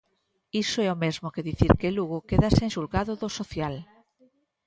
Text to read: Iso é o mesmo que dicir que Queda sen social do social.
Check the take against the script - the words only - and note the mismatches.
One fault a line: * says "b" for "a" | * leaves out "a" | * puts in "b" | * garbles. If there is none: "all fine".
* puts in "Lugo"
* says "xulgado" for "social"